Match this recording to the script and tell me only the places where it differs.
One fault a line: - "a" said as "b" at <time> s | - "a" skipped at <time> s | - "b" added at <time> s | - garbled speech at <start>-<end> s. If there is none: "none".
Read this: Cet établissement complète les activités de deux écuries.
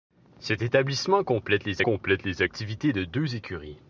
- "complète les" added at 1.8 s